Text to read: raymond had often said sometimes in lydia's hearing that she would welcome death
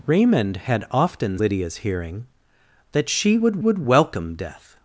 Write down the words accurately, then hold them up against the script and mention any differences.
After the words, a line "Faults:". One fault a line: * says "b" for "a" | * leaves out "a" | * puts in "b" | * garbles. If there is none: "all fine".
raymond had often lydia's hearing that she would would welcome death
Faults:
* leaves out "said sometimes in"
* puts in "would"